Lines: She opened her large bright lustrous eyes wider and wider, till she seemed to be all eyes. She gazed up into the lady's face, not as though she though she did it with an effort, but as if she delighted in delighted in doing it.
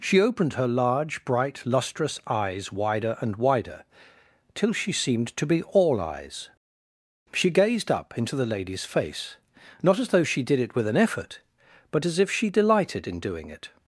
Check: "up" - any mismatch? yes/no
no